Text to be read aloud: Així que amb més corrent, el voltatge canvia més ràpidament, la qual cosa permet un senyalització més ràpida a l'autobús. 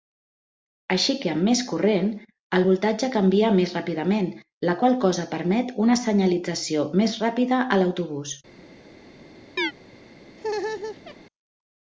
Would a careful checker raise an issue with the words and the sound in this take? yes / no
yes